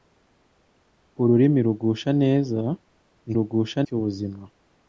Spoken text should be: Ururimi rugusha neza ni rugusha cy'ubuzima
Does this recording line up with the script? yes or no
yes